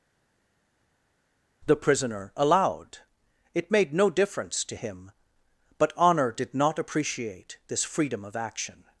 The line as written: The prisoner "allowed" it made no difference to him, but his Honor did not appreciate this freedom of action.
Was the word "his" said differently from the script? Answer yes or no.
yes